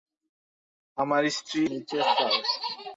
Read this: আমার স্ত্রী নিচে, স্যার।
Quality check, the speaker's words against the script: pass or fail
pass